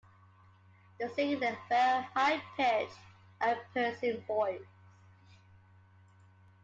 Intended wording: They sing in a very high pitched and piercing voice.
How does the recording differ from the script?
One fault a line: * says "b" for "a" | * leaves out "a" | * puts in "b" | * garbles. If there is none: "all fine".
all fine